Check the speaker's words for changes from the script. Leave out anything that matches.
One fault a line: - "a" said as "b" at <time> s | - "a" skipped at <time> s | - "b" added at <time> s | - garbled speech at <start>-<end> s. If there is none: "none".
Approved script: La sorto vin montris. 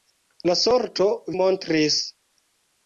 - "vin" skipped at 1.1 s